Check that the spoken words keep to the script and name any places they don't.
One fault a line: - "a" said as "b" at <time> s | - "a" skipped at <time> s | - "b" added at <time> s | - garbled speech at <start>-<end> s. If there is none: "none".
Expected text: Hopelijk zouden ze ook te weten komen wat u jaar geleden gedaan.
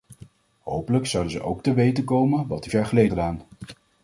none